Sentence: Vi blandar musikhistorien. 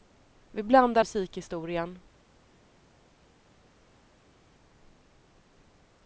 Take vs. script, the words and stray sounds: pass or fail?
pass